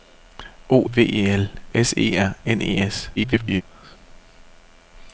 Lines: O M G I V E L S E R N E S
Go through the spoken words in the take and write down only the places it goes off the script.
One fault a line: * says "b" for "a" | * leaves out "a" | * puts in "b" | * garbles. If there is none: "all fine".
* leaves out "M G I"
* garbles